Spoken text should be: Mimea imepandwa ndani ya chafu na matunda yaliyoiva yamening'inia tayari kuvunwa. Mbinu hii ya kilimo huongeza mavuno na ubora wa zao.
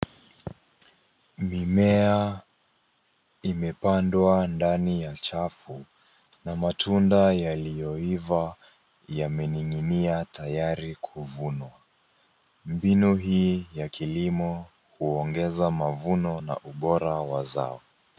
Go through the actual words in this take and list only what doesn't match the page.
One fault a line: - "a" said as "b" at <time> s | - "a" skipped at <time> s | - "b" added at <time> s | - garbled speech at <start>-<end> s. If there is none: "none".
none